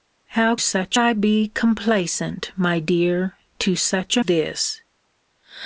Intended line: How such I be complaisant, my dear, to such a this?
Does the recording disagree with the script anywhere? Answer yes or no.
no